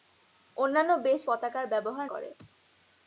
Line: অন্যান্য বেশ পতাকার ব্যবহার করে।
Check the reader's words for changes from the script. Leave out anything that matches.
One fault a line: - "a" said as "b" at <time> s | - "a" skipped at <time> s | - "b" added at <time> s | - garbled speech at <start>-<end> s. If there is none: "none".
none